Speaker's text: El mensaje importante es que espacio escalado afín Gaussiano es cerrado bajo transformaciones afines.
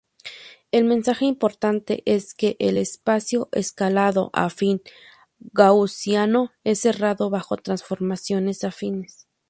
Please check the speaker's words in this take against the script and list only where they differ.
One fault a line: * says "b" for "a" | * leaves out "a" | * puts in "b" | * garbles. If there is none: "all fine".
* puts in "el"